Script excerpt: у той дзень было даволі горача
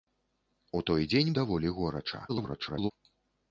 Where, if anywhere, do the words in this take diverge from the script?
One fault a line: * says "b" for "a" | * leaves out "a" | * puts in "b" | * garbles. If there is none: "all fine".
* leaves out "было"
* garbles